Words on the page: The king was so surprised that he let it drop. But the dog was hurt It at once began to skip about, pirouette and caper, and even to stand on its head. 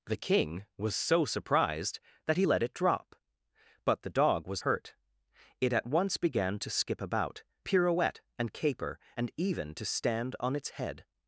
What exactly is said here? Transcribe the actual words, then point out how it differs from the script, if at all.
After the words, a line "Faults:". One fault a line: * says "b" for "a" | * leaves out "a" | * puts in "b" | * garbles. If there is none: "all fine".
The king was so surprised that he let it drop. But the dog was hurt It at once began to skip about, pirouette and caper, and even to stand on its head.
Faults:
all fine